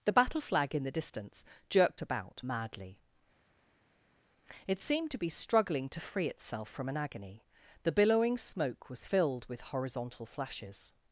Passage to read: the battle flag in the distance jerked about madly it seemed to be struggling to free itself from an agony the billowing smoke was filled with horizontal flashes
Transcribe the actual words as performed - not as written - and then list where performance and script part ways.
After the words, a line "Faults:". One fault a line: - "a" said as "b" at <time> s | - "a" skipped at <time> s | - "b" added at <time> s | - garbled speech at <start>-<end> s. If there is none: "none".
the battle flag in the distance jerked about madly it seemed to be struggling to free itself from an agony the billowing smoke was filled with horizontal flashes
Faults:
none